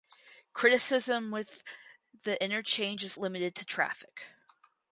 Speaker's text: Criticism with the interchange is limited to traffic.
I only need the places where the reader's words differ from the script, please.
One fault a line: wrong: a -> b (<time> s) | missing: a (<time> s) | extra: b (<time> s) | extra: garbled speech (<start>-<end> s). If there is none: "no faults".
no faults